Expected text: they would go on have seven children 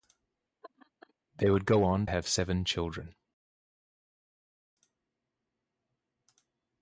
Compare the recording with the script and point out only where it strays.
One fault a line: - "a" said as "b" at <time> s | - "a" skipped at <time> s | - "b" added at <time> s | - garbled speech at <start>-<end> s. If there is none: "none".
none